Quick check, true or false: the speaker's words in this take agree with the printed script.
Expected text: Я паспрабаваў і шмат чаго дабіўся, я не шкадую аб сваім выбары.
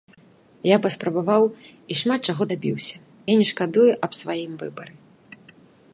true